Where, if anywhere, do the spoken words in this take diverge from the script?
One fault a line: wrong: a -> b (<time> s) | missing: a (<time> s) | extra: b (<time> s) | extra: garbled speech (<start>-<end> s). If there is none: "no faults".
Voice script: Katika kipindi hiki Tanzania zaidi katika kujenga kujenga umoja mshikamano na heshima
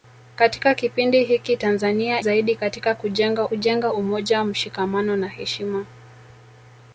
no faults